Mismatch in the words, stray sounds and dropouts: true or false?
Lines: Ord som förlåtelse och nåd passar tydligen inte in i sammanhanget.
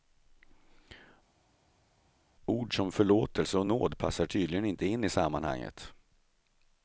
false